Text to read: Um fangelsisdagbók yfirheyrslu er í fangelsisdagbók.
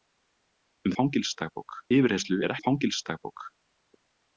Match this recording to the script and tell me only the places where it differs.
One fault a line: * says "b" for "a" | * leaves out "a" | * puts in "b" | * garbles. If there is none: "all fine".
all fine